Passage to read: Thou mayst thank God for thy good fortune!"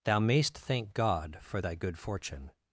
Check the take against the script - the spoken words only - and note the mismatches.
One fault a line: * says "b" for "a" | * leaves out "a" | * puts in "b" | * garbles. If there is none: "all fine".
all fine